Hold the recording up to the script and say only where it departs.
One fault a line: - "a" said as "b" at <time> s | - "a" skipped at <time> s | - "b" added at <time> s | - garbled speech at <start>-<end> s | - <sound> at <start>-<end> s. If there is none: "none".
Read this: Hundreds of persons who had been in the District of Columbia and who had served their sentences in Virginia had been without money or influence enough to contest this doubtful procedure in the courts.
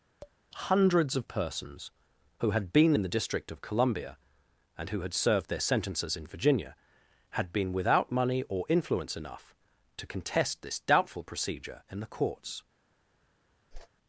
- tap at 0.2-0.4 s
- whoosh at 13.7-13.9 s